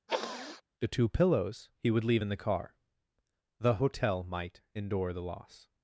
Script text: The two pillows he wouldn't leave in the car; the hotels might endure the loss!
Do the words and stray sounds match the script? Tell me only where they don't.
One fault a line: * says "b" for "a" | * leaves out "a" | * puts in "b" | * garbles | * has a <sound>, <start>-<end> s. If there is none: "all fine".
* has a sniff, 0.1-0.6 s
* says "would" for "wouldn't"
* says "hotel" for "hotels"